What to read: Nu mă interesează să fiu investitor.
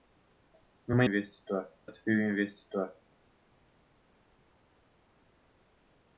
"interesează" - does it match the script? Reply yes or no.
no